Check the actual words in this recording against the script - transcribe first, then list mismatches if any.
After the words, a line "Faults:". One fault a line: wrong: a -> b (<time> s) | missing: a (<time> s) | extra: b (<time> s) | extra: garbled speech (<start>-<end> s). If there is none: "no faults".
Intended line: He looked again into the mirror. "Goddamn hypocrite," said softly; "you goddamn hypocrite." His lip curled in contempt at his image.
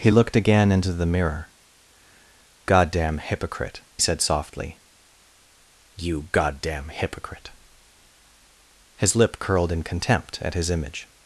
He looked again into the mirror. "Goddamn hypocrite," said softly; "you goddamn hypocrite." His lip curled in contempt at his image.
Faults:
no faults